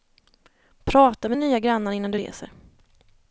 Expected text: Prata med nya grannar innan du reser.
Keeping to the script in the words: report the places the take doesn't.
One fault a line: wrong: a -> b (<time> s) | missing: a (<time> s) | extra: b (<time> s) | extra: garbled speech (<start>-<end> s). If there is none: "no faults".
no faults